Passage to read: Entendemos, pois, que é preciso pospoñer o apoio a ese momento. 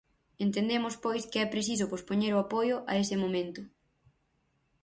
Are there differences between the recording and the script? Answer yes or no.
no